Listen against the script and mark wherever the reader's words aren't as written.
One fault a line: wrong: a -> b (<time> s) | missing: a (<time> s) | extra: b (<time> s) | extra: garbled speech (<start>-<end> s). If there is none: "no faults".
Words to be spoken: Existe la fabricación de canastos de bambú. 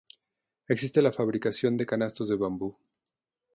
no faults